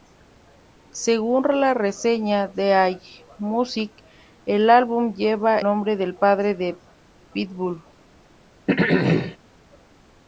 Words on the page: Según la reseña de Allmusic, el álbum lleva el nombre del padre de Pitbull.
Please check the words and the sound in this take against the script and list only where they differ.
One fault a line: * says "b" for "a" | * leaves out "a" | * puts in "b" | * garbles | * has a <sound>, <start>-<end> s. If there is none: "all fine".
* leaves out "el"
* has a throat clearing, 8.7-9.4 s